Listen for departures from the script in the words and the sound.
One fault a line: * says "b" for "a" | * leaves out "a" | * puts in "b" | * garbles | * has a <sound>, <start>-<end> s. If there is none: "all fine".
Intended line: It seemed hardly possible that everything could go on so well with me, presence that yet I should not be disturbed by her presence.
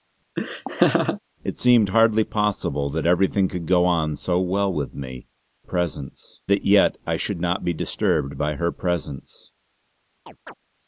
* has a laugh, 0.4-1.2 s
* has a chirp, 10.3-10.5 s